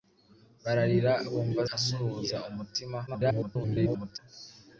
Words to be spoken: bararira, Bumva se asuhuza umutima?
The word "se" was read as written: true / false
false